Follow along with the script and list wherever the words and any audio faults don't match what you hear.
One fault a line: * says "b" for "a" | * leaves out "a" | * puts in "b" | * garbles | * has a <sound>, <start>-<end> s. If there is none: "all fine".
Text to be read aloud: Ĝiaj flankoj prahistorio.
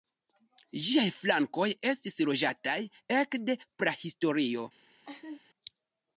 * puts in "estis loĝataj ekde"
* has a laugh, 5.1-5.4 s